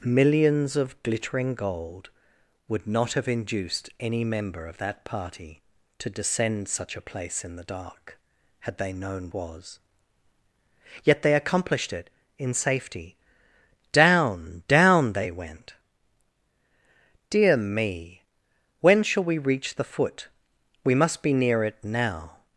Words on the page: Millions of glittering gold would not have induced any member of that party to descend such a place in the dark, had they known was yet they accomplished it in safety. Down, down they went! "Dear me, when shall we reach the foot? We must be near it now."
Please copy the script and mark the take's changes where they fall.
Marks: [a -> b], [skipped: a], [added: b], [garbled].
Millions of glittering gold would not have induced any member of that party to descend such a place in the dark, had they known was yet they accomplished it in safety. Down, down they went! "Dear me, when shall we reach the foot? We must be near it now."